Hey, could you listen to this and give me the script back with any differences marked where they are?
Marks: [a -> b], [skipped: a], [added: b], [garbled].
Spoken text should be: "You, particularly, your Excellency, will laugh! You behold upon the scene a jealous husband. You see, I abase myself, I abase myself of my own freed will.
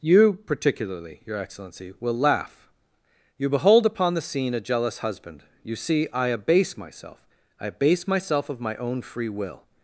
"You, particularly, your Excellency, will laugh! You behold upon the scene a jealous husband. You see, I abase myself, I abase myself of my own [freed -> free] will.